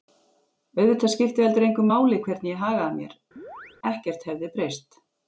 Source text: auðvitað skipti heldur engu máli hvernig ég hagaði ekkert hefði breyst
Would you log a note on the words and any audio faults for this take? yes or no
yes